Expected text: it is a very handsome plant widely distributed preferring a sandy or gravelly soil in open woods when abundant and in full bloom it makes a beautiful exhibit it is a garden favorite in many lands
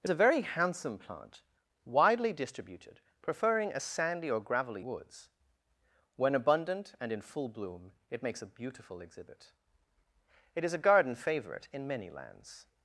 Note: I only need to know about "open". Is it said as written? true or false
false